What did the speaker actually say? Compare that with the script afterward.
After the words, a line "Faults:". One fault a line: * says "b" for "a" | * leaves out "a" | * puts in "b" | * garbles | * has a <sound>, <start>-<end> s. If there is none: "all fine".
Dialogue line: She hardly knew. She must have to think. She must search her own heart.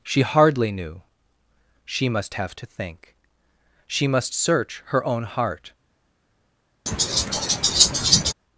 She hardly knew. She must have to think. She must search her own heart.
Faults:
* has a laugh, 6.9-8.3 s